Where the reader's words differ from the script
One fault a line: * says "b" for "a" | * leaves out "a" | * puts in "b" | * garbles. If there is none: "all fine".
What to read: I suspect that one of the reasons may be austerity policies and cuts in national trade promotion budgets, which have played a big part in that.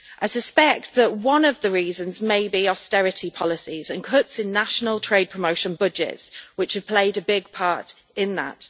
all fine